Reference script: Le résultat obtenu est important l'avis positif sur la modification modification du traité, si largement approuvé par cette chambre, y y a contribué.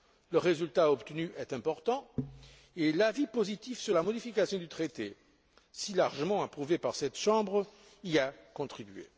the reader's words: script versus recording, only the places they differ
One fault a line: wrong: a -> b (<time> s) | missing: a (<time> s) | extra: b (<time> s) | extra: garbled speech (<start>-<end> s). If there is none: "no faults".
extra: et (2.8 s)
missing: modification (4.6 s)
missing: y (8.2 s)